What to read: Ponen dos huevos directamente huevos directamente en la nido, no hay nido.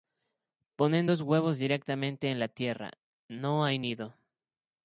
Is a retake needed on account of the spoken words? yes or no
yes